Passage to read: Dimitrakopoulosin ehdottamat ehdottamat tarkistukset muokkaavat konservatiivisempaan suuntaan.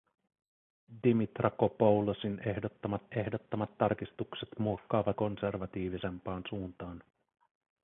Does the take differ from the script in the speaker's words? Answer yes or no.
no